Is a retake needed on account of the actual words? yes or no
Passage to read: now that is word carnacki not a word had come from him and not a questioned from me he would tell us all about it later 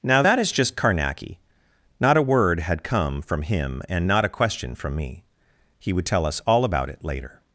yes